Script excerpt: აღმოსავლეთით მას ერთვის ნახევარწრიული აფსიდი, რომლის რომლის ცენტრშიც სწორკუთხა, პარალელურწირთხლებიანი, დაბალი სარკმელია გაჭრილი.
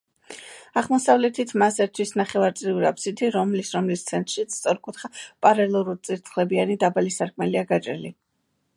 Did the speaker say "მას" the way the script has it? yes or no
yes